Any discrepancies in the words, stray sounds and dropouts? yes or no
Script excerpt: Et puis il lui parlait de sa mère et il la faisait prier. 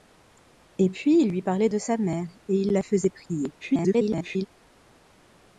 yes